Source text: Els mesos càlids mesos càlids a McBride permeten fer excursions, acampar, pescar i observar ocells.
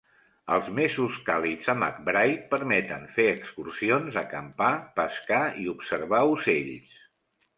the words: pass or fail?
fail